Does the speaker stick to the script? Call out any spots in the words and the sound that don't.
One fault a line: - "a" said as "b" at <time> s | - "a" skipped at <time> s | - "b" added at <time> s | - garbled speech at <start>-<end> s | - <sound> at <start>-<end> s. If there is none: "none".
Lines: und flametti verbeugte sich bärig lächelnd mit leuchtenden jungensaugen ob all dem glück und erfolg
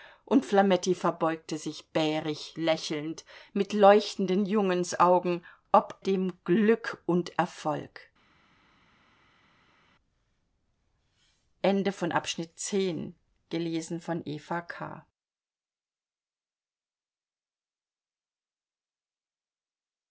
- "all" skipped at 6.0 s